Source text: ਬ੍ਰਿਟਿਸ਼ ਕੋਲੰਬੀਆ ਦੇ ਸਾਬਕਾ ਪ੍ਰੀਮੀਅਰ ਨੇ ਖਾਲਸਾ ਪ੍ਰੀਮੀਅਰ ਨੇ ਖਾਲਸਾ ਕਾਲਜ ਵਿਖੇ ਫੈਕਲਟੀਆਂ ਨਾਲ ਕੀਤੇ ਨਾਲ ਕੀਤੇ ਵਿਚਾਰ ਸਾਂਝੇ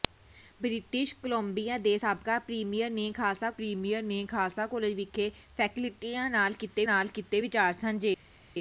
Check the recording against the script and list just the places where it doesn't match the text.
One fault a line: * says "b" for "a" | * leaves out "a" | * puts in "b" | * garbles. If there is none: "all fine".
all fine